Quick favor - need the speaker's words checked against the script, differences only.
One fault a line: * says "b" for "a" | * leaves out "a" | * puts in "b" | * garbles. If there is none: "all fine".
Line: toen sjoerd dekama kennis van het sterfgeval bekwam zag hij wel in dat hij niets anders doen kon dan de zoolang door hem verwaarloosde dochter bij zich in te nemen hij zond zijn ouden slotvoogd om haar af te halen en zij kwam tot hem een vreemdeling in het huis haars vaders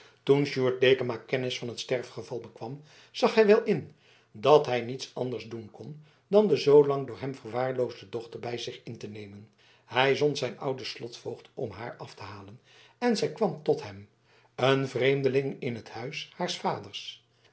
all fine